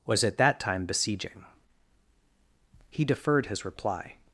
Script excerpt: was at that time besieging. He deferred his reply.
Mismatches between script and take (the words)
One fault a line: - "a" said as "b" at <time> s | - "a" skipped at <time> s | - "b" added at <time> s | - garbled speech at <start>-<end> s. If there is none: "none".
none